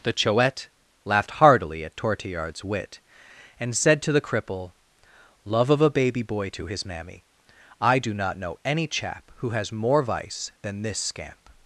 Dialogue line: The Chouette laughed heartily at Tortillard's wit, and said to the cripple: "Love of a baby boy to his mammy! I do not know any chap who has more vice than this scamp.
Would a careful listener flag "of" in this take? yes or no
no